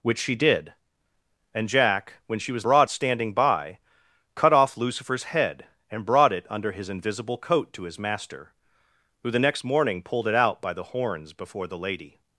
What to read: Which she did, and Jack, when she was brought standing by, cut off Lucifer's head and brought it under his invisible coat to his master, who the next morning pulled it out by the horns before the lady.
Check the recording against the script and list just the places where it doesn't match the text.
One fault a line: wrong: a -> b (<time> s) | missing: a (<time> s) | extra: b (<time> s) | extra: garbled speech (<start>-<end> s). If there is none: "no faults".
no faults